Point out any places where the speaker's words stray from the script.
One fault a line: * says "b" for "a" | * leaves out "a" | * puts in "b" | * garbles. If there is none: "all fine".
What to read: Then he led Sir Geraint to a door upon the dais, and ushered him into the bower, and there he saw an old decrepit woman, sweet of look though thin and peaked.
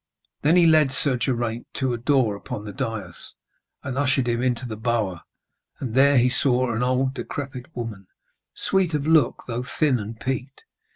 all fine